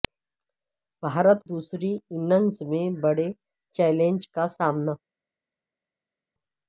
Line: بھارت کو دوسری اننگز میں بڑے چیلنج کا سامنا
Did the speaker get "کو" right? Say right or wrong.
wrong